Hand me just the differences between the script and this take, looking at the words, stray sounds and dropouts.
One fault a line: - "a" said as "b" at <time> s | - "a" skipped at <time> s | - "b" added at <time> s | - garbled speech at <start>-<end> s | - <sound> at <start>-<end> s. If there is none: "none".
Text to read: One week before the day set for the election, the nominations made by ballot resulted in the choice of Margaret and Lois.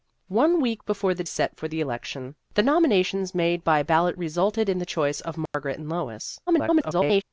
- "day" skipped at 1.2 s
- dropout at 5.5-5.5 s
- garbled speech at 6.5-7.2 s